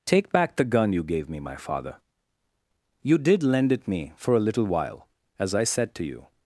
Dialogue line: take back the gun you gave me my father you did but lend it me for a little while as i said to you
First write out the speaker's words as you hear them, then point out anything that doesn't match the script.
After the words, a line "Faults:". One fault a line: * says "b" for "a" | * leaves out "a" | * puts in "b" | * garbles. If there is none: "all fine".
take back the gun you gave me my father you did lend it me for a little while as i said to you
Faults:
* leaves out "but"